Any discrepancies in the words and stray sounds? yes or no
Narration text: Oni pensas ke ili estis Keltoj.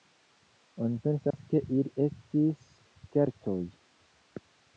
yes